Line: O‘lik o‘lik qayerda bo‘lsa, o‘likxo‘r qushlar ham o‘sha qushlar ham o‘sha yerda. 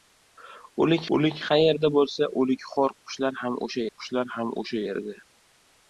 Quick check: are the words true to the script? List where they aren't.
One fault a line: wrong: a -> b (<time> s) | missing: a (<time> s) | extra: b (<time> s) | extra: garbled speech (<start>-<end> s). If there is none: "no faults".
no faults